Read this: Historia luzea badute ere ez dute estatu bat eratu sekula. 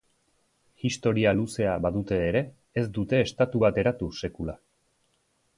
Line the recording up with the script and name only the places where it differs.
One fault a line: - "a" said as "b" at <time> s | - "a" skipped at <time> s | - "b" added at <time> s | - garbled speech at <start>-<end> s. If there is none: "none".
none